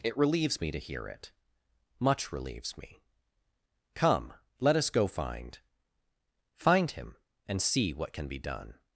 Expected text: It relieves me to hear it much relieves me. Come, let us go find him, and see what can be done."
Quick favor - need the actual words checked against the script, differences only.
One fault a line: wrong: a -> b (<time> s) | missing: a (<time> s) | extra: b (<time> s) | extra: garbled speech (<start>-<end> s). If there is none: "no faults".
extra: find (6.5 s)